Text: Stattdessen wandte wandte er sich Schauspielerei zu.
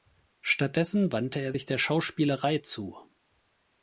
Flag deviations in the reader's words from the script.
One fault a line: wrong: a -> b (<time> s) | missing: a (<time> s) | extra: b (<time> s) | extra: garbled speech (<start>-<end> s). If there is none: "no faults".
missing: wandte (1.4 s)
extra: der (1.6 s)